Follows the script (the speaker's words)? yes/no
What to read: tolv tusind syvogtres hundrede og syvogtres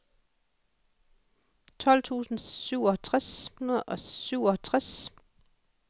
yes